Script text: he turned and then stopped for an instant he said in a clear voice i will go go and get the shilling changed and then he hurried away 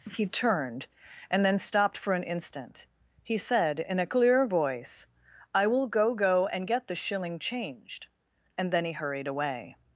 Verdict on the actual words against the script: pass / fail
pass